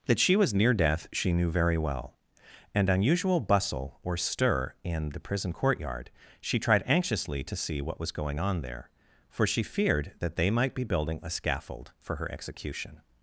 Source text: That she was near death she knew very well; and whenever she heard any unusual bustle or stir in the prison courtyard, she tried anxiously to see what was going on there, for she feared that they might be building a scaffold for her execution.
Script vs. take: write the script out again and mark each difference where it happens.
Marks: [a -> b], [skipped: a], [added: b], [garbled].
That she was near death she knew very well; and [skipped: whenever she heard any] unusual bustle or stir in the prison courtyard, she tried anxiously to see what was going on there, for she feared that they might be building a scaffold for her execution.